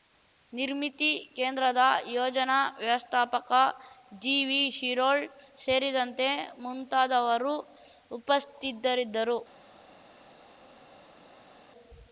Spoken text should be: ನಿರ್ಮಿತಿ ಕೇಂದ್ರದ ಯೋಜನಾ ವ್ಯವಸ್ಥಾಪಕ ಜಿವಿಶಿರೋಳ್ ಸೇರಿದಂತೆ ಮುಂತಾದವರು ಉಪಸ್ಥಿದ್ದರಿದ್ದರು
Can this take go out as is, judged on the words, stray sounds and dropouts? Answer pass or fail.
pass